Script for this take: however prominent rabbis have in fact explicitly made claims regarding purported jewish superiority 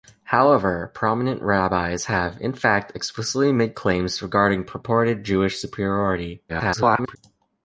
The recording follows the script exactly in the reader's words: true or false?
false